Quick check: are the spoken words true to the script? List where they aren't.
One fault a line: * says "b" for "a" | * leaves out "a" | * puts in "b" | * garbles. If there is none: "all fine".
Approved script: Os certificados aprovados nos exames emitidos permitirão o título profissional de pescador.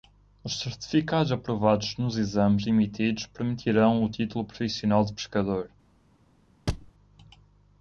all fine